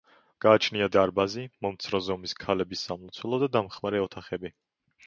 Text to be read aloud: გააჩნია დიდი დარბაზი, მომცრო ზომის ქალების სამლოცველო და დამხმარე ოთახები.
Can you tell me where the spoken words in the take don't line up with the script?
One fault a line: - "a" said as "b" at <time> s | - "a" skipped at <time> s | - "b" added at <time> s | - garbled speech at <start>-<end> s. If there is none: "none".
- "დიდი" skipped at 0.8 s